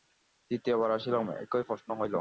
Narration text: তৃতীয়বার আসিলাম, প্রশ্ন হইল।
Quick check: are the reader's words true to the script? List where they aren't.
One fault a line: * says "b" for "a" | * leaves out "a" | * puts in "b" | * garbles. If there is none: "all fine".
* puts in "একই"